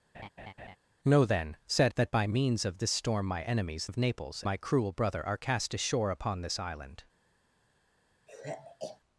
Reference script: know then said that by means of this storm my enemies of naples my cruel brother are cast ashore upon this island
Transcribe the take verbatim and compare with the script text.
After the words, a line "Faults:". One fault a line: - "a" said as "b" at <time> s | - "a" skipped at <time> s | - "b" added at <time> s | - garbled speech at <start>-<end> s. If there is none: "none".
know then said that by means of this storm my enemies of naples my cruel brother are cast ashore upon this island
Faults:
none